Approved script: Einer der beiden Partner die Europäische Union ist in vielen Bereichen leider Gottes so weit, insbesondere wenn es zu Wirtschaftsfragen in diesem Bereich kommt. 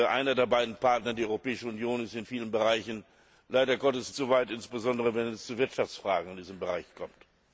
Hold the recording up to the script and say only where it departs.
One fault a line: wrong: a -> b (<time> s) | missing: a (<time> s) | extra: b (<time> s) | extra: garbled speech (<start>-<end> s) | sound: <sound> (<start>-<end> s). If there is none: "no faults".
no faults